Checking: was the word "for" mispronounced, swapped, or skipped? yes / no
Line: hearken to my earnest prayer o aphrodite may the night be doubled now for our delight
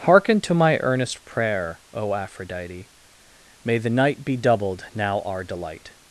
yes